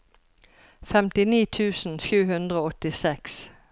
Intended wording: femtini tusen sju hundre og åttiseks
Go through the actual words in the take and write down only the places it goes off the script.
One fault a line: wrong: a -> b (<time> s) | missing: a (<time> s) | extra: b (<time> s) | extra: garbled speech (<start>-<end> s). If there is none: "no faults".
no faults